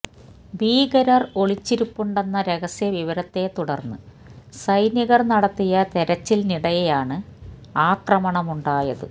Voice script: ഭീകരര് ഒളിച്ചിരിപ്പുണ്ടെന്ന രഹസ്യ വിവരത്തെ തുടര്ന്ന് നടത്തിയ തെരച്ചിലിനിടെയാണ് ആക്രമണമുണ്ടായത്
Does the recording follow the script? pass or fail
fail